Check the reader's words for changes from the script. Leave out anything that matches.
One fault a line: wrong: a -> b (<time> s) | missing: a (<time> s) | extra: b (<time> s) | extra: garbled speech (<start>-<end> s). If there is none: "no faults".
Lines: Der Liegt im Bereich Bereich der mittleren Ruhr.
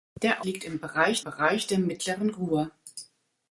no faults